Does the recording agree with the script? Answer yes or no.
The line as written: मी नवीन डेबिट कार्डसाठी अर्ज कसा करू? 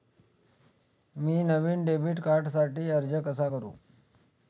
yes